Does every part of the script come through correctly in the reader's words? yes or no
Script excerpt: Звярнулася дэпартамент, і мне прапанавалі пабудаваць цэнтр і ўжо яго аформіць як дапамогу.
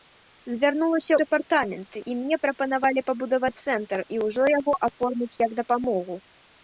yes